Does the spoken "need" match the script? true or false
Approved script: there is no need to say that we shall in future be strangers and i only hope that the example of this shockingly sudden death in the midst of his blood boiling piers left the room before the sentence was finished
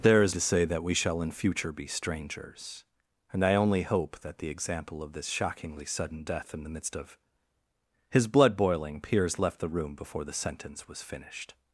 false